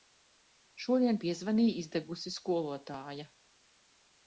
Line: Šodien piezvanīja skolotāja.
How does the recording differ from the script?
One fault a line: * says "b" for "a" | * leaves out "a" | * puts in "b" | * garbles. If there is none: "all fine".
* puts in "izdegusi"